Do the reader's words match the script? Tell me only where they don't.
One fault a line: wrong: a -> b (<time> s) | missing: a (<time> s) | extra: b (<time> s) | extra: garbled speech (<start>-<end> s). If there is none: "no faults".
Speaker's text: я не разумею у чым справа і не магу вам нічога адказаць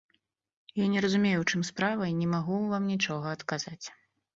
no faults